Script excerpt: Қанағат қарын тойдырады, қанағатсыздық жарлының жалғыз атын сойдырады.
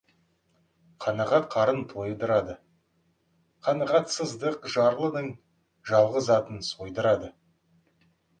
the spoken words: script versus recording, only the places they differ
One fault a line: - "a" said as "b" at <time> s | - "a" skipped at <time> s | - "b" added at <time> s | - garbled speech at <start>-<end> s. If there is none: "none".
none